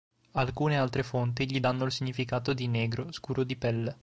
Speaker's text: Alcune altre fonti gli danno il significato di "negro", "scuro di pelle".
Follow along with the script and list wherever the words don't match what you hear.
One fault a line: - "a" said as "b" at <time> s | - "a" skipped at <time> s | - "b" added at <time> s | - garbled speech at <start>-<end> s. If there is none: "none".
none